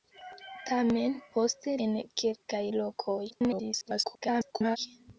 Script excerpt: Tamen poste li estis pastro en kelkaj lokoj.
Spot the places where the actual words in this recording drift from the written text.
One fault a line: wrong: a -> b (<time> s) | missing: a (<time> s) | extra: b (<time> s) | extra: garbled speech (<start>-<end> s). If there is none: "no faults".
missing: li estis pastro (1.8 s)
extra: garbled speech (3.3-4.8 s)